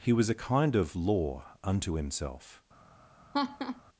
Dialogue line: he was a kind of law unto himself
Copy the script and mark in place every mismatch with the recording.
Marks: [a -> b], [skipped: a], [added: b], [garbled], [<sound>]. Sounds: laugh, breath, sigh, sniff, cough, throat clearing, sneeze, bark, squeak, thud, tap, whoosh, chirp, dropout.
he was a kind of law unto himself [laugh]